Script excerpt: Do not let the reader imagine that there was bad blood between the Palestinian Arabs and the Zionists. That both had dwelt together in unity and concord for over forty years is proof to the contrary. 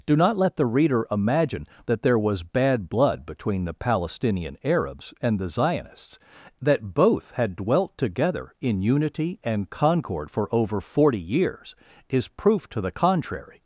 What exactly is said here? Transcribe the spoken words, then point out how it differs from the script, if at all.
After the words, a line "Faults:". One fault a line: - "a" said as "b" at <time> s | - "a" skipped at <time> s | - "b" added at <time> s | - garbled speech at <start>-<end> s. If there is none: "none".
Do not let the reader imagine that there was bad blood between the Palestinian Arabs and the Zionists. That both had dwelt together in unity and concord for over forty years is proof to the contrary.
Faults:
none